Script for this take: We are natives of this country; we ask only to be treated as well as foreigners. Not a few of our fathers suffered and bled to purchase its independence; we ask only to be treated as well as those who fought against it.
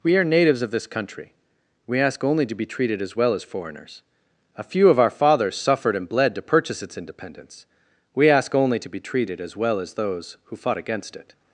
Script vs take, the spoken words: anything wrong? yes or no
yes